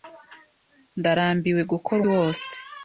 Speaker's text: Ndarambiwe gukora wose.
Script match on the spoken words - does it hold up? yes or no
yes